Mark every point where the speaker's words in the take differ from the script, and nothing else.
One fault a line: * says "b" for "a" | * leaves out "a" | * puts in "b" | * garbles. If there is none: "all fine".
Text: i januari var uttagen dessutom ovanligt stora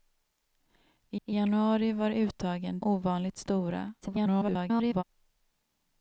* puts in "i"
* leaves out "dessutom"
* garbles